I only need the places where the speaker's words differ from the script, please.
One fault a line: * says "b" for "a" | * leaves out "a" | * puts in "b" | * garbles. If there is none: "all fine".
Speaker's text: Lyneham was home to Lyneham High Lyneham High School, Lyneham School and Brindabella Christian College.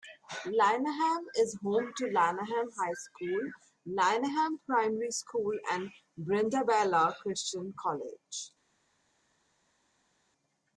* says "is" for "was"
* leaves out "Lyneham High"
* puts in "Primary"